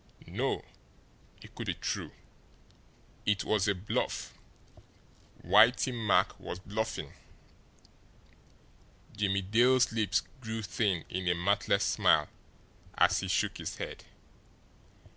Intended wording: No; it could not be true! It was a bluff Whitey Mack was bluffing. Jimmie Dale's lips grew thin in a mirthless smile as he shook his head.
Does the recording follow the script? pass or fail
fail